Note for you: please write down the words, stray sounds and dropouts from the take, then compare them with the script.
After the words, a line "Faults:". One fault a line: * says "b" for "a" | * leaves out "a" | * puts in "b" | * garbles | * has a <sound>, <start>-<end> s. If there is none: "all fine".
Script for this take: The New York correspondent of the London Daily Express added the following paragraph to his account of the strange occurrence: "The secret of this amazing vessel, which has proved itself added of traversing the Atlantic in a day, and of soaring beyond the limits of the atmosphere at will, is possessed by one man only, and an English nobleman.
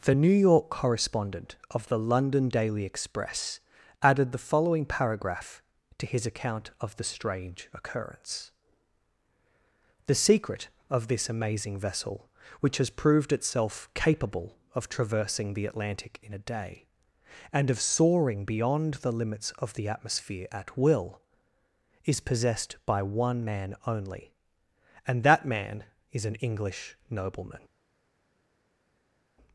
The New York correspondent of the London Daily Express added the following paragraph to his account of the strange occurrence: "The secret of this amazing vessel, which has proved itself capable of traversing the Atlantic in a day, and of soaring beyond the limits of the atmosphere at will, is possessed by one man only, and that man is an English nobleman.
Faults:
* says "capable" for "added"
* puts in "that man is"